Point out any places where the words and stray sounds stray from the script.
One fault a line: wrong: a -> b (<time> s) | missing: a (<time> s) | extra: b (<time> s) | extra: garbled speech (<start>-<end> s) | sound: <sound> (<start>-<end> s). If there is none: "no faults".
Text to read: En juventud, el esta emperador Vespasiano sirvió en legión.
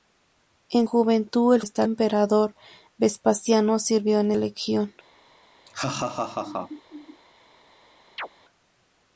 sound: laugh (5.7-7.2 s)
sound: chirp (8.2-8.3 s)